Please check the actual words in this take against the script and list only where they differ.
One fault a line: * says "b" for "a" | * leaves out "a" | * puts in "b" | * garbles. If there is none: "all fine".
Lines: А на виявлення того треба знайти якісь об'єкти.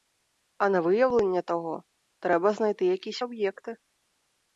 all fine